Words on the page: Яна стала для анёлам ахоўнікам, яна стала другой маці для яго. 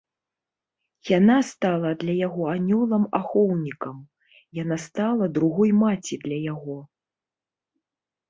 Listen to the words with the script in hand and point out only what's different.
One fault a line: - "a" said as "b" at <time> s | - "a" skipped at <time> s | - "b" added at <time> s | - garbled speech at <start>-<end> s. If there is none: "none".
- "яго" added at 2.3 s